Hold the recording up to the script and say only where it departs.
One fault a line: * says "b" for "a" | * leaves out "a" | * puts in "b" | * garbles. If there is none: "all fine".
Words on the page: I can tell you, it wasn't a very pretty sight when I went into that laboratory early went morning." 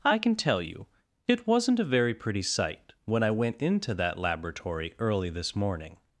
* says "this" for "went"